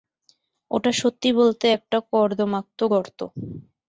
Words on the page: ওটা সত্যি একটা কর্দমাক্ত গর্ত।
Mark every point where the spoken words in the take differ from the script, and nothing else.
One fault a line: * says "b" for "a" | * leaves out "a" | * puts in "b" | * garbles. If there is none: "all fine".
* puts in "বলতে"